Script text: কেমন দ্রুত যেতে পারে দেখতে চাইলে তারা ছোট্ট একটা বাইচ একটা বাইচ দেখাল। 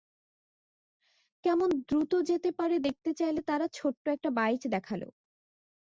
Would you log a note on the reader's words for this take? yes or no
yes